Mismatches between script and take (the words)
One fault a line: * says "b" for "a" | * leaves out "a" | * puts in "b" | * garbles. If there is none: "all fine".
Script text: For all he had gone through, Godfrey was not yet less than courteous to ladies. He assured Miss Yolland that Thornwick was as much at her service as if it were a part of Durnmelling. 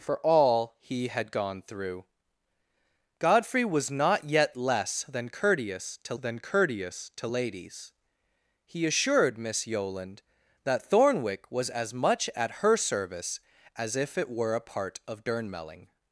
* puts in "than courteous to"